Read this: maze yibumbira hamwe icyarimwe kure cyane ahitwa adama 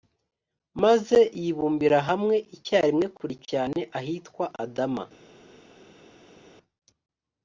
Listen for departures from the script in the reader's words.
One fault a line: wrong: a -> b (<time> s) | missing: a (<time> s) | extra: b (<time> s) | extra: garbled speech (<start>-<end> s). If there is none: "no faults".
no faults